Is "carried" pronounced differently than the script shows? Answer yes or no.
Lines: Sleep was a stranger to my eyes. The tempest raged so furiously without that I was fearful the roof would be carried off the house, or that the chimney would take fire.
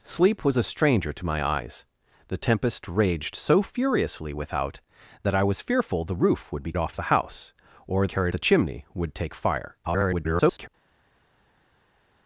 yes